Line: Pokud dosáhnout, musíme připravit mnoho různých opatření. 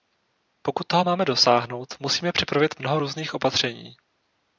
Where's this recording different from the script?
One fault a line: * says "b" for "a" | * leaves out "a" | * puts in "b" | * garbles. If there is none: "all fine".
* puts in "toho máme"